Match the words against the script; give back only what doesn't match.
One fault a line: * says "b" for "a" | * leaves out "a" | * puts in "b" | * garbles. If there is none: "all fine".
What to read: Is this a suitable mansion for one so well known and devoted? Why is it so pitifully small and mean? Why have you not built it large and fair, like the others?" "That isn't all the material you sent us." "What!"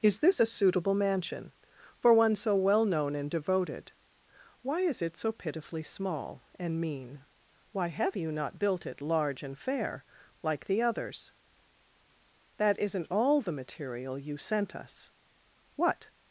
all fine